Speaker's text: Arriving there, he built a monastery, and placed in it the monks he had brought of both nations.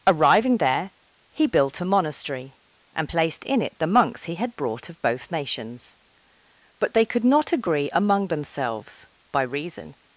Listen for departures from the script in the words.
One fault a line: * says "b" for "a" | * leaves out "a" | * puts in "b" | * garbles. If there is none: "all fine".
* puts in "But they could not agree among themselves by reason"